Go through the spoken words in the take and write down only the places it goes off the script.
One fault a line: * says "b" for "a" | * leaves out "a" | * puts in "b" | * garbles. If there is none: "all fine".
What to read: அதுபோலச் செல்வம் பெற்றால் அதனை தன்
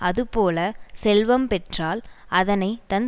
all fine